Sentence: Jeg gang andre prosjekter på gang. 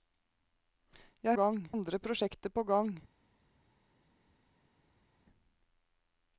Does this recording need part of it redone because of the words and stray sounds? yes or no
no